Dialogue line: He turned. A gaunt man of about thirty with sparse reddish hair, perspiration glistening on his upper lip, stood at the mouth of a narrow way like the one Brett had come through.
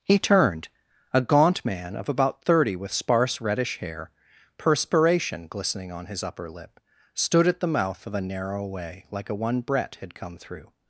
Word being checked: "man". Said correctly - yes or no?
yes